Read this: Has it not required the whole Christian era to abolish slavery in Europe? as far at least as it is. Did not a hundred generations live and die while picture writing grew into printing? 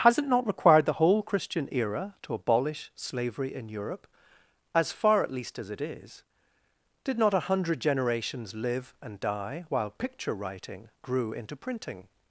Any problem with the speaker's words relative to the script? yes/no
no